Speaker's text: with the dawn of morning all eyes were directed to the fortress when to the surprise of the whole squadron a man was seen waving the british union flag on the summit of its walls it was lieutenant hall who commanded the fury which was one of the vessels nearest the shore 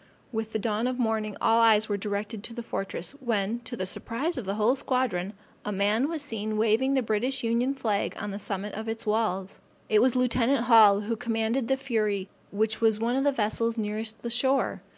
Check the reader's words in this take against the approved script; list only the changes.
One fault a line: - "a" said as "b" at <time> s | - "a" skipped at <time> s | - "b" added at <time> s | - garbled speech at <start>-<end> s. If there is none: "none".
none